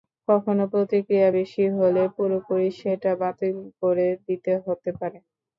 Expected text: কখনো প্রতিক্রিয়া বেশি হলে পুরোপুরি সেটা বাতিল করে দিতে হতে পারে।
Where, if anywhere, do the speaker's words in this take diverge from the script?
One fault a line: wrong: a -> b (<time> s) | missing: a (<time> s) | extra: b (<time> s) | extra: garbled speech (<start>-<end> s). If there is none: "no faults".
no faults